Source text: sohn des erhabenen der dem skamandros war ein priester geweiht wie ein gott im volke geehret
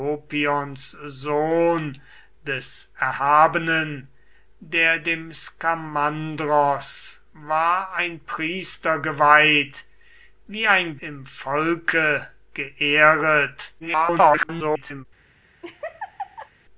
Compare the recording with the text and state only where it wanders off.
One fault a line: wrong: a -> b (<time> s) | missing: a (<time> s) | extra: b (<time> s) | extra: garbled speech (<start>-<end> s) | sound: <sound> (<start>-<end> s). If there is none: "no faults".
missing: gott (11.0 s)
extra: garbled speech (13.8-15.1 s)
sound: laugh (15.6-16.5 s)